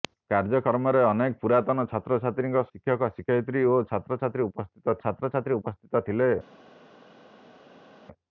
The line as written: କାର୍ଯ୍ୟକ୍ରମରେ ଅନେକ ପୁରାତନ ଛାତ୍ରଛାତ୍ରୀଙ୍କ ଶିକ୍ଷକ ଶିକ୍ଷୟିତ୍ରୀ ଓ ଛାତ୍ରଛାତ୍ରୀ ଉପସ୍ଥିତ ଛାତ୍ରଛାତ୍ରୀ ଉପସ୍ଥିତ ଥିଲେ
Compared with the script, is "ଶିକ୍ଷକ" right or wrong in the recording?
right